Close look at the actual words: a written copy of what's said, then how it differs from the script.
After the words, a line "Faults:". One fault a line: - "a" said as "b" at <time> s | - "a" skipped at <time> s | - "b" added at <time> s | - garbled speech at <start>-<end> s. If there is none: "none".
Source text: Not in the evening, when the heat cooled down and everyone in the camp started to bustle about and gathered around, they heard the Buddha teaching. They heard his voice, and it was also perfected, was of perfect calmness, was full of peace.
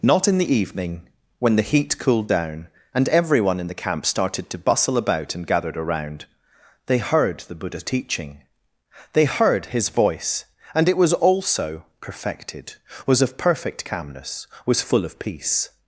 Not in the evening, when the heat cooled down and everyone in the camp started to bustle about and gathered around, they heard the Buddha teaching. They heard his voice, and it was also perfected, was of perfect calmness, was full of peace.
Faults:
none